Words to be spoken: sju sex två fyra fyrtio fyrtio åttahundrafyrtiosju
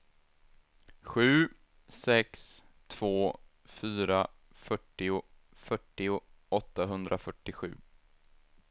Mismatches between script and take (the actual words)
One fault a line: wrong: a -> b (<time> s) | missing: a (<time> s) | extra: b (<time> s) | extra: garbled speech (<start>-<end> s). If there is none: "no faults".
no faults